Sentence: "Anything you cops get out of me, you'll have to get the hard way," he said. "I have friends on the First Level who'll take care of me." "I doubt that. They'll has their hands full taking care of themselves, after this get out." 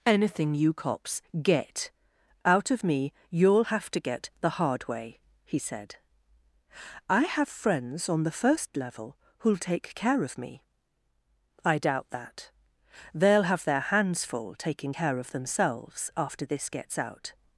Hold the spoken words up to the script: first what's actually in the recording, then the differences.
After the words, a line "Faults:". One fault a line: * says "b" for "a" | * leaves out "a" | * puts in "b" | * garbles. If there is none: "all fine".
"Anything you cops get out of me, you'll have to get the hard way," he said. "I have friends on the First Level who'll take care of me." "I doubt that. They'll have their hands full taking care of themselves, after this gets out."
Faults:
* says "have" for "has"
* says "gets" for "get"